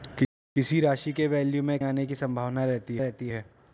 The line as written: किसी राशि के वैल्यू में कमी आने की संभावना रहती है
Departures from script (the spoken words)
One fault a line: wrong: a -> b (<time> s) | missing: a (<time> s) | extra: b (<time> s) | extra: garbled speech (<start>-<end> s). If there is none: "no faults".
missing: कमी (1.8 s)
extra: रहती (3.0 s)